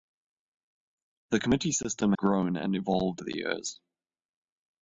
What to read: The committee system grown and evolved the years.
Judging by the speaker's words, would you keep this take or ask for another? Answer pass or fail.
pass